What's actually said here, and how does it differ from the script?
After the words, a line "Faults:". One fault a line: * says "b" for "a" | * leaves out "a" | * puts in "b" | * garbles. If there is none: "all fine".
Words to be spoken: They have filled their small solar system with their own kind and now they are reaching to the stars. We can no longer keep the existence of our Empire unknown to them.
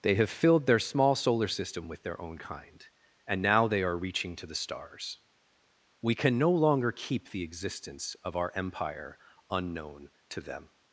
They have filled their small solar system with their own kind and now they are reaching to the stars. We can no longer keep the existence of our Empire unknown to them.
Faults:
all fine